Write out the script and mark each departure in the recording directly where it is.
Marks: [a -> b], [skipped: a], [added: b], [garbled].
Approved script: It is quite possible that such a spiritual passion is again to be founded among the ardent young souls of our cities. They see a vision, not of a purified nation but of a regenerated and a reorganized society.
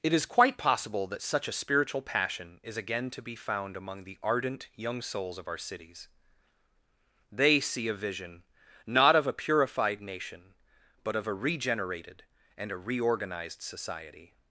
It is quite possible that such a spiritual passion is again to be [founded -> found] among the ardent young souls of our cities. They see a vision, not of a purified nation but of a regenerated and a reorganized society.